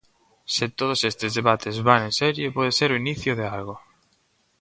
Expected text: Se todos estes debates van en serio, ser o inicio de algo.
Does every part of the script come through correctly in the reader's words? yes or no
no